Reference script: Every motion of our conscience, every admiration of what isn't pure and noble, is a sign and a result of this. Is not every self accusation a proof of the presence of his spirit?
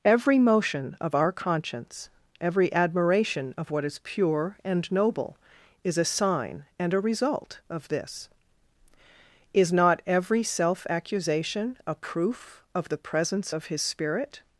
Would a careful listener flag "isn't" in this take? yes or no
yes